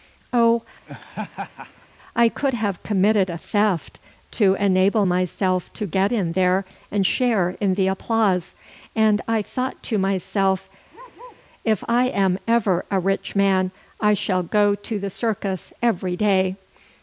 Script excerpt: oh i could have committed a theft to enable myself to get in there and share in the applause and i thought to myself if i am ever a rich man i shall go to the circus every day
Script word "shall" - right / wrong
right